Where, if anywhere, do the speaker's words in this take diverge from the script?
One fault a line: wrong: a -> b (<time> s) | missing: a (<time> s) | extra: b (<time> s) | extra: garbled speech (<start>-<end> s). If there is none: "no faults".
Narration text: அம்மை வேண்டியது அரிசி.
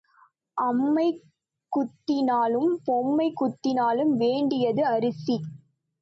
extra: குத்தினாலும் பொம்மை குத்தினாலும் (1.7 s)